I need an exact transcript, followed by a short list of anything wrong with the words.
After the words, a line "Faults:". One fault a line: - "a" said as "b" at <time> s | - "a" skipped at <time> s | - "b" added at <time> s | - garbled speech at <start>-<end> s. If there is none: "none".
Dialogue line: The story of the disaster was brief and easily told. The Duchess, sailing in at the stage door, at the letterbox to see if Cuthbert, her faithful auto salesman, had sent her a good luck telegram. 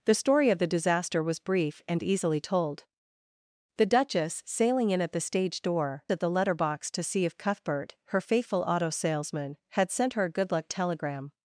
The story of the disaster was brief and easily told. The Duchess, sailing in at the stage door, at the letterbox to see if Cuthbert, her faithful auto salesman, had sent her a good luck telegram.
Faults:
none